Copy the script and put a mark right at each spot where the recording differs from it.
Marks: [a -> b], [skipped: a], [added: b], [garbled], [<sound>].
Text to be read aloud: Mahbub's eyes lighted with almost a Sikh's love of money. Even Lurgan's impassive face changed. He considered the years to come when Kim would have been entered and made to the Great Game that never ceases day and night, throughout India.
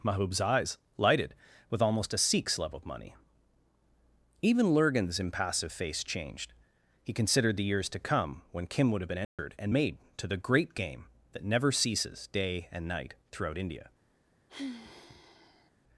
Mahbub's eyes lighted with almost a Sikh's love of money. Even Lurgan's impassive face changed. He considered the years to come when Kim would have been entered [dropout] and made to the Great Game that never ceases day and night, throughout India. [sigh]